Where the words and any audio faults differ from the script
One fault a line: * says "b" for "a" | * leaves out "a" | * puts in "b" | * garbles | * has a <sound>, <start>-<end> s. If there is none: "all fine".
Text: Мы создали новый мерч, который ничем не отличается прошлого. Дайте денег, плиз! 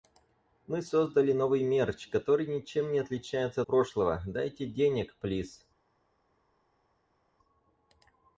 all fine